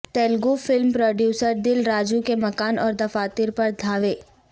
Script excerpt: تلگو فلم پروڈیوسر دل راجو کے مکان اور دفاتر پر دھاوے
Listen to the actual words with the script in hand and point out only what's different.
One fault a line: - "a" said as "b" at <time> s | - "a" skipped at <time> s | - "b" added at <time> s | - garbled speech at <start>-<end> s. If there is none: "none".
none